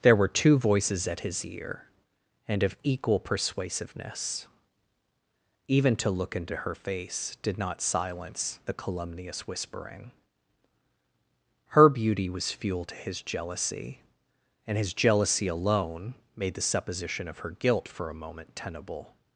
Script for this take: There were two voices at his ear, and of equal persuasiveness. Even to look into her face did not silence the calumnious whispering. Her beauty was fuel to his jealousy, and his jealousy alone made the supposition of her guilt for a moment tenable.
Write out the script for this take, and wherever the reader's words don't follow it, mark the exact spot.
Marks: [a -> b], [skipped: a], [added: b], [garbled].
There were two voices at his ear, and of equal persuasiveness. Even to look into her face did not silence the calumnious whispering. Her beauty was fuel to his jealousy, and his jealousy alone made the supposition of her guilt for a moment tenable.